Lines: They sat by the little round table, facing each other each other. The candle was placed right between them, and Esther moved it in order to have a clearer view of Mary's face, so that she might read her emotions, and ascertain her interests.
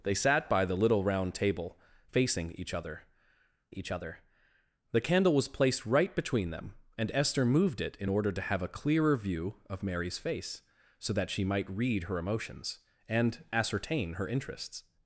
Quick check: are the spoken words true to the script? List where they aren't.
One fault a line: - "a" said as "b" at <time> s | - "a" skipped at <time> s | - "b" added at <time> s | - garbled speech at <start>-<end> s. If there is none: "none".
none